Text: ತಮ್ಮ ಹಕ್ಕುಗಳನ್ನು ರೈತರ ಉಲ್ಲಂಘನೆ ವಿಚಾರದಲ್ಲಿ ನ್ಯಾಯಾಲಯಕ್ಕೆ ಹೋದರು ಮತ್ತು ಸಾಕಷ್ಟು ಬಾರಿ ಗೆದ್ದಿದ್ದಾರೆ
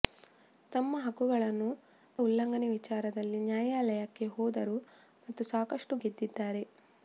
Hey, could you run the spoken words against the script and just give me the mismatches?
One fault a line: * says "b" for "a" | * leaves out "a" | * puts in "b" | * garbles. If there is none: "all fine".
* leaves out "ರೈತರ"
* leaves out "ಬಾರಿ"